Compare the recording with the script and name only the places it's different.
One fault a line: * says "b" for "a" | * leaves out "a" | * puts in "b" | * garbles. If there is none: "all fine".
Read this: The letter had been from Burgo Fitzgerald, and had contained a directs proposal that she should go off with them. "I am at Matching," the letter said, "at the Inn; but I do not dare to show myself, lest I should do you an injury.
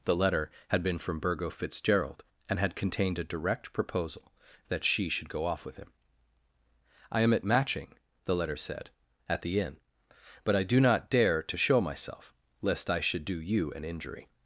* says "direct" for "directs"
* says "him" for "them"